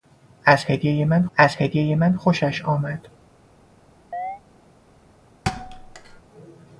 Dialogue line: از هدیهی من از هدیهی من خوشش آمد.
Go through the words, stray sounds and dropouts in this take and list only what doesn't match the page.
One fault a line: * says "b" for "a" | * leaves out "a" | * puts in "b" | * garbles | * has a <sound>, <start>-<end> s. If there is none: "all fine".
* has a chirp, 4.1-4.4 s
* has a thud, 5.5-6.2 s